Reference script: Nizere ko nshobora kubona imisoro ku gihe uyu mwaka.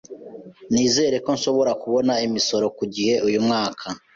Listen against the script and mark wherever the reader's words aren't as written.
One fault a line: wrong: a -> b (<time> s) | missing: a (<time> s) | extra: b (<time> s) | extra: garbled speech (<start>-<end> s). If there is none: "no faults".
no faults